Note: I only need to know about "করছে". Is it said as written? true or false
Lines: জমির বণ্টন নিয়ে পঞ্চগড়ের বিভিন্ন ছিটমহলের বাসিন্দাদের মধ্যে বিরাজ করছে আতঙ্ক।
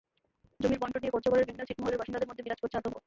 true